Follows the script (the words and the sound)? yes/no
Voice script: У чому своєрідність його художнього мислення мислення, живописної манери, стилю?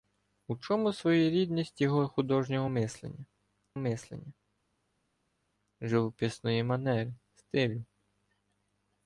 yes